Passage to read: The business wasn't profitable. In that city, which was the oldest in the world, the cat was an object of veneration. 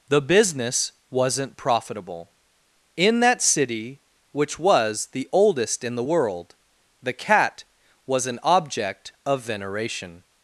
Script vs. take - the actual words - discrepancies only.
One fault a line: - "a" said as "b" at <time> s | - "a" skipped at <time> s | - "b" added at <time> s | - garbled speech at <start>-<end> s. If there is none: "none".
none